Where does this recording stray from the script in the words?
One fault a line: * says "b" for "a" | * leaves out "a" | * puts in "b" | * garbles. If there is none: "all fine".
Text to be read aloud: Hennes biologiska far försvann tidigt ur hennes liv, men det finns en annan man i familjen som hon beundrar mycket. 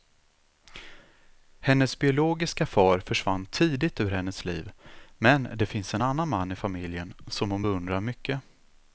all fine